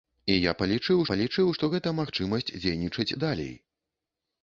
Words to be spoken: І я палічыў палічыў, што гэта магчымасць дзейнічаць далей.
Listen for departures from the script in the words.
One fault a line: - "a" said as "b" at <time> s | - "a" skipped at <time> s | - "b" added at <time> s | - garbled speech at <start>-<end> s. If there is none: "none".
none